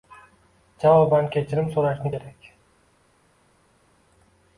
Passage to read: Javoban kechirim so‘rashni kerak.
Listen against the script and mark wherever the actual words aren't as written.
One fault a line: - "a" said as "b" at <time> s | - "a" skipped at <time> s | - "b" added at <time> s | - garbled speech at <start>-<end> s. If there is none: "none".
none